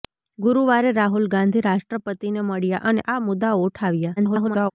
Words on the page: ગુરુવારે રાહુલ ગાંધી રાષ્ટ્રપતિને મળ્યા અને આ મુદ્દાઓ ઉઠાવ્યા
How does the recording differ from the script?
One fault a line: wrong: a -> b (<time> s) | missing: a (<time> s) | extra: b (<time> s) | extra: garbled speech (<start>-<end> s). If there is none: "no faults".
extra: garbled speech (4.2-4.7 s)